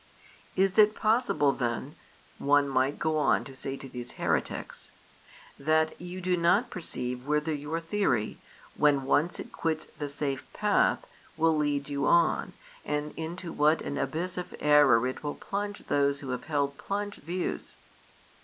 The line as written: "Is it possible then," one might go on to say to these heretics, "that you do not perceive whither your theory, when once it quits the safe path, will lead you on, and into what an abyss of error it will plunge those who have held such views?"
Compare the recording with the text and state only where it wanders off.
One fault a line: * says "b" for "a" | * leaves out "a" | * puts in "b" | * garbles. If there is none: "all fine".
* says "plunge" for "such"